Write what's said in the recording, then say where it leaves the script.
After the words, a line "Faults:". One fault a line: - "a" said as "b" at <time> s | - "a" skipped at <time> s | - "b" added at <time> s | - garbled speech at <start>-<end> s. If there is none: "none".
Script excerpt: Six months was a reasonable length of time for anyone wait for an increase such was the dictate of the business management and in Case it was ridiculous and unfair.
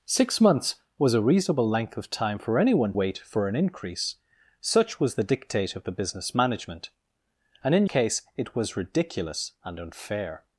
Six months was a reasonable length of time for anyone wait for an increase such was the dictate of the business management and in Case it was ridiculous and unfair.
Faults:
none